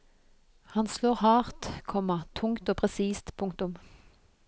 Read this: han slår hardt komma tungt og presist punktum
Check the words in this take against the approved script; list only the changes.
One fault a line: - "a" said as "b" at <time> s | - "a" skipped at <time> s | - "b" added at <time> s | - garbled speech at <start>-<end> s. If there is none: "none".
none